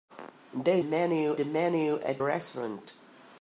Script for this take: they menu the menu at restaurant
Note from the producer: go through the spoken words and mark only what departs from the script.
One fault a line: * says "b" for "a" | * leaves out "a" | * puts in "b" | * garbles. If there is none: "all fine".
all fine